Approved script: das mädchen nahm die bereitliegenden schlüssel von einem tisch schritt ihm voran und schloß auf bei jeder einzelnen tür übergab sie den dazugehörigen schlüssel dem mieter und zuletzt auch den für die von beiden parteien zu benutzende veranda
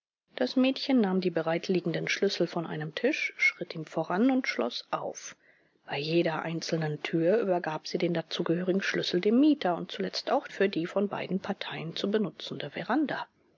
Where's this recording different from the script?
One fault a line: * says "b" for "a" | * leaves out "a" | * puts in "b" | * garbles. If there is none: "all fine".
* leaves out "den"